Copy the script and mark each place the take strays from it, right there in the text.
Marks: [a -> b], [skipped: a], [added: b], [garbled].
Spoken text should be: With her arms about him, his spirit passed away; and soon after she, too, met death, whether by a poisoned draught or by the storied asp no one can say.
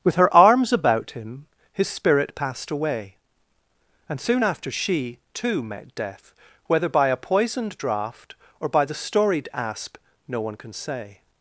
With her arms about him, his spirit passed away; and soon after she, too, met death, whether by a poisoned draught or by the storied asp no one can say.